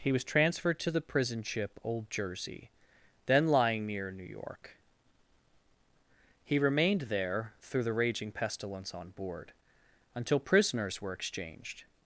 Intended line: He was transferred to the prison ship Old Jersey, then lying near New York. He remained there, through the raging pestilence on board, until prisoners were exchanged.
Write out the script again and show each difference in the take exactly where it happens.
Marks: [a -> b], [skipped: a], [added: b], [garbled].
He was transferred to the prison ship Old Jersey, then lying near New York. He remained there, through the raging pestilence on board, until prisoners were exchanged.